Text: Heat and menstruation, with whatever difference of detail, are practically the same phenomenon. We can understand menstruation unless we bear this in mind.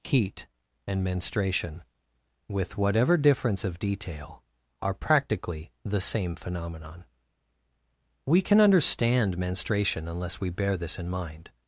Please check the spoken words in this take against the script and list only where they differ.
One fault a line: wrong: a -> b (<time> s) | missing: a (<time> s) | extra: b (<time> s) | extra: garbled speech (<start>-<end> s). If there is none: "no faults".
no faults